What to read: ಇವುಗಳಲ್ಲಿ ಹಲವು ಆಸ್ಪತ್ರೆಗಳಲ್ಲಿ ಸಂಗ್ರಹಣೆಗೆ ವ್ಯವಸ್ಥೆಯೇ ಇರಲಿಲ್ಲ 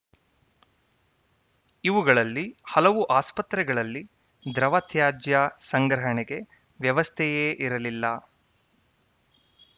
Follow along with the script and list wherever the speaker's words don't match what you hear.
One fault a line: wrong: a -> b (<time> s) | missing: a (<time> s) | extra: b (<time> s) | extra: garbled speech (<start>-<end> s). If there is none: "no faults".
extra: ದ್ರವ ತ್ಯಾಜ್ಯ (4.5 s)